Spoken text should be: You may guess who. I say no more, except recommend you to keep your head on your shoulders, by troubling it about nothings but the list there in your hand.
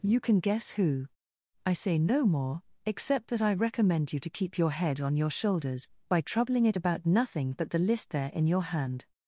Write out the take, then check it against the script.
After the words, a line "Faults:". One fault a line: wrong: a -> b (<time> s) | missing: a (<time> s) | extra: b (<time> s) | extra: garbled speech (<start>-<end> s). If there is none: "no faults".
You can guess who. I say no more, except that I recommend you to keep your head on your shoulders, by troubling it about nothing but the list there in your hand.
Faults:
wrong: may -> can (0.2 s)
extra: that I (3.3 s)
wrong: nothings -> nothing (7.0 s)